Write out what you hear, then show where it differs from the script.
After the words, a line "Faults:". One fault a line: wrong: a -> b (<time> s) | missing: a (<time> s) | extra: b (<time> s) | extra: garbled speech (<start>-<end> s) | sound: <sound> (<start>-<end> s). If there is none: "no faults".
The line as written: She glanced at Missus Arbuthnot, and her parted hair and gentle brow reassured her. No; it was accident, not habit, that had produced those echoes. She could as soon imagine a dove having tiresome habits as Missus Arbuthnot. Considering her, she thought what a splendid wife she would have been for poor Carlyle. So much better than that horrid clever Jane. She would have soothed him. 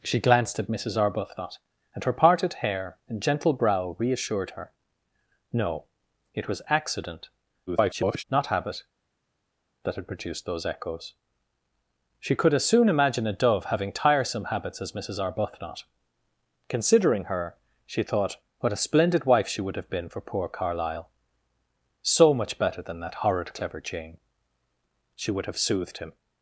She glanced at Missus Arbuthnot, and her parted hair and gentle brow reassured her. No; it was accident, [garbled] not habit, that had produced those echoes. She could as soon imagine a dove having tiresome habits as Missus Arbuthnot. Considering her, she thought what a splendid wife she would have been for poor Carlyle. So much better than that horrid clever Jane. She would have soothed him.
Faults:
extra: garbled speech (7.7-8.2 s)